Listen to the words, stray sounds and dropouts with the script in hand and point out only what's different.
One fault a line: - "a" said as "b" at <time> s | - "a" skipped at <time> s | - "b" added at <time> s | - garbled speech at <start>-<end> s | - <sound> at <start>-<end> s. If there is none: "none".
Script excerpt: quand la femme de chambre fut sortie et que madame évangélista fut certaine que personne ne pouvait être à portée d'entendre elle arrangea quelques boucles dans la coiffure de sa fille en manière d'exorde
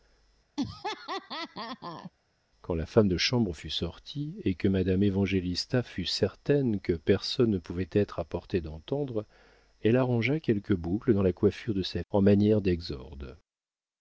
- laugh at 0.6-2.1 s
- "fille" skipped at 12.0 s